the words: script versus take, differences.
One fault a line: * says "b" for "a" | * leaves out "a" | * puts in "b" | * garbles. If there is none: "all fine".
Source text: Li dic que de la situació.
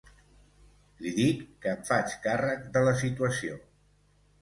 * puts in "em faig càrrec"